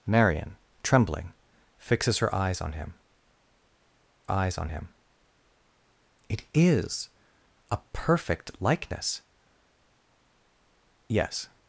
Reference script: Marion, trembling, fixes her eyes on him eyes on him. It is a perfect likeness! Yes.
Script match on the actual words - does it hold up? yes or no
yes